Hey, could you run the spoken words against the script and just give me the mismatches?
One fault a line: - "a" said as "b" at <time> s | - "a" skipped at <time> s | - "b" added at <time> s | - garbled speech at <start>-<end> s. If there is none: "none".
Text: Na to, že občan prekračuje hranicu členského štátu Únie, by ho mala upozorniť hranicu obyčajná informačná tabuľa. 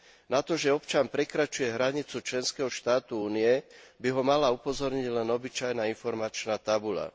- "hranicu" said as "len" at 5.1 s